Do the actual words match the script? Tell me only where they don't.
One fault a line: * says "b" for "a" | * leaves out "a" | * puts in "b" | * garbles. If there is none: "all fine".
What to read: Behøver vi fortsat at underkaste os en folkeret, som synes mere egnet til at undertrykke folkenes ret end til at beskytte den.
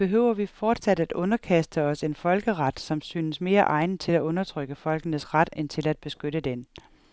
all fine